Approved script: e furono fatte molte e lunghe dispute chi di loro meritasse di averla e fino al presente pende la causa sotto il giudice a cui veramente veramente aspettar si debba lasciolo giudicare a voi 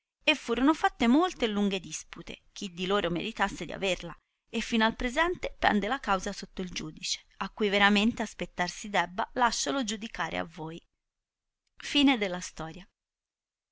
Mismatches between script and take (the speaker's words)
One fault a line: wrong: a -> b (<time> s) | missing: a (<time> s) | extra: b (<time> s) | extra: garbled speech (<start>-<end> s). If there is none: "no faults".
missing: veramente (8.2 s)